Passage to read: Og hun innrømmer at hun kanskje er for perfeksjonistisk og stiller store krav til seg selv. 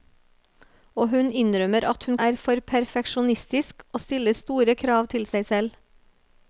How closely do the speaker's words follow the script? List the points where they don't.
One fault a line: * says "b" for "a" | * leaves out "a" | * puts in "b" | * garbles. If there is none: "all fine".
* leaves out "kanskje"